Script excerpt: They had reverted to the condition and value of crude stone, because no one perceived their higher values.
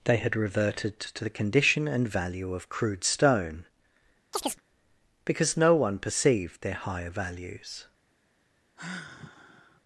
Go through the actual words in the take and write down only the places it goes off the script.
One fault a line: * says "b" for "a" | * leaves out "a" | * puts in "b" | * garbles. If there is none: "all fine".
all fine